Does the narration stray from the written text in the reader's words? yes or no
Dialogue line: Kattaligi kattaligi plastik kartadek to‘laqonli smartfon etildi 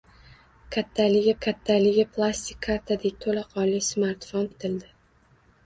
no